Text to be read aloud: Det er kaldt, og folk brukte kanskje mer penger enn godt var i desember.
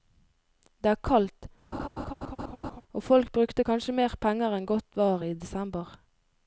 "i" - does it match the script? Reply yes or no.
yes